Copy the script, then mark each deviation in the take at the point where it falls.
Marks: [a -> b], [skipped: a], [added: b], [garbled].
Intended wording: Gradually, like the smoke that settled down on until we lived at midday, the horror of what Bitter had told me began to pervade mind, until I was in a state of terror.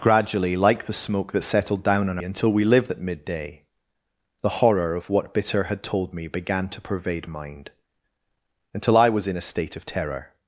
Gradually, like the smoke that settled down on until we lived at midday, the horror of what Bitter had told me began to pervade mind, until I was in a state of terror.